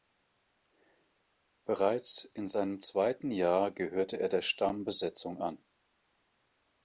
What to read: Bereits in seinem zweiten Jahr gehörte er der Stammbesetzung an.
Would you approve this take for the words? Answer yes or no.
yes